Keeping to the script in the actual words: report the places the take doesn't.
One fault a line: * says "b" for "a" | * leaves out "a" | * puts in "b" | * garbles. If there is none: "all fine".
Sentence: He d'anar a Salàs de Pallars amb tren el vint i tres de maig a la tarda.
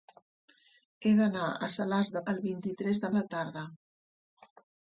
* leaves out "Pallars amb tren"
* leaves out "maig"